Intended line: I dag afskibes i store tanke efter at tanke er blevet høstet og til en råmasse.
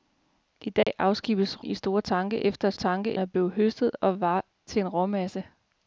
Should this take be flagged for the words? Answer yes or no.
no